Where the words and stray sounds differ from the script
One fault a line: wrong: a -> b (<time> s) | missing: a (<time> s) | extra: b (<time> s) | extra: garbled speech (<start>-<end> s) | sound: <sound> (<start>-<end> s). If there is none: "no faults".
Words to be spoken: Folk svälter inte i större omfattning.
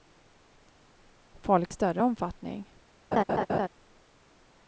missing: svälter inte (1.7 s)
sound: laugh (3.1-3.7 s)